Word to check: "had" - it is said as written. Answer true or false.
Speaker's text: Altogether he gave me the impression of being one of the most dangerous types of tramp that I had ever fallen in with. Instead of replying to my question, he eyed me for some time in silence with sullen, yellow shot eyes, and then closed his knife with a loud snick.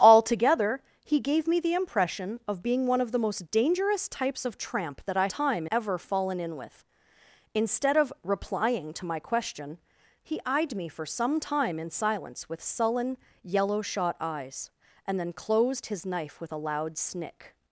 false